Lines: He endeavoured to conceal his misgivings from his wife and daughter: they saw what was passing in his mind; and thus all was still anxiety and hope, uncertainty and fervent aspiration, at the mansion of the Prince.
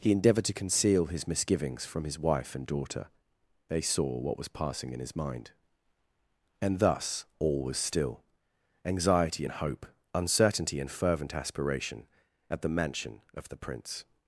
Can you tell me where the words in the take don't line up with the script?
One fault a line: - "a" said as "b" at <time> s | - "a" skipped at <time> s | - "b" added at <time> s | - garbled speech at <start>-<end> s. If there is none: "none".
none